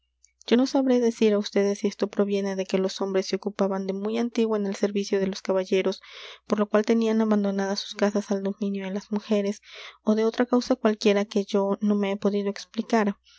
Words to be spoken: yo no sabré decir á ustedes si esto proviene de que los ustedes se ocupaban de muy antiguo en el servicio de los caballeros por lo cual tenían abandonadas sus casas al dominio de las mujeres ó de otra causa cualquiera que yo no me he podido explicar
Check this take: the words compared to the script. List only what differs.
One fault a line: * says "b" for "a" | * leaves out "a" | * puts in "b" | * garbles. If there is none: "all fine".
* says "hombres" for "ustedes"